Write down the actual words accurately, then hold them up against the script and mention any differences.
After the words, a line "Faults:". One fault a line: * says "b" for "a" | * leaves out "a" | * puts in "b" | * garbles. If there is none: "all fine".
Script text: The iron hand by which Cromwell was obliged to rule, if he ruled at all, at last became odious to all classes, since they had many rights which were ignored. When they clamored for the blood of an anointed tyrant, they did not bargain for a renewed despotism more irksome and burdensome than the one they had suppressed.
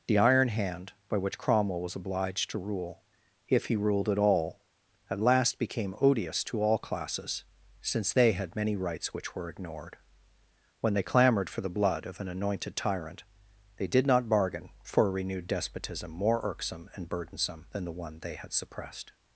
The iron hand by which Cromwell was obliged to rule, if he ruled at all, at last became odious to all classes, since they had many rights which were ignored. When they clamored for the blood of an anointed tyrant, they did not bargain for a renewed despotism more irksome and burdensome than the one they had suppressed.
Faults:
all fine